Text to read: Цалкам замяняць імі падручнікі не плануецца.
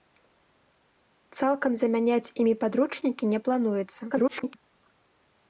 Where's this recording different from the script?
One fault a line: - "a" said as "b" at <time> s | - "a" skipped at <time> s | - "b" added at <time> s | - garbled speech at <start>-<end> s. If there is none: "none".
- garbled speech at 4.1-4.6 s